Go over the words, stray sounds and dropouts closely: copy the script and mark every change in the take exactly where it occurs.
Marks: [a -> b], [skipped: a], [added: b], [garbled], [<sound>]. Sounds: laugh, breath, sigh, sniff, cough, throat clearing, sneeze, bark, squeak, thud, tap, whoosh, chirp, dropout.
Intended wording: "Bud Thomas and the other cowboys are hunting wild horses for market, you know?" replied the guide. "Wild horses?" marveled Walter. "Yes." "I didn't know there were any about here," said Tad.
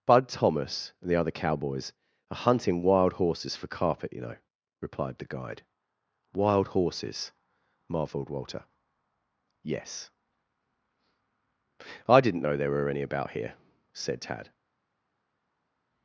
"Bud Thomas and the other cowboys are hunting wild horses for [market, -> carpet] you know?" replied the guide. "Wild horses?" marveled Walter. "Yes." "I didn't know there were any about here," said Tad.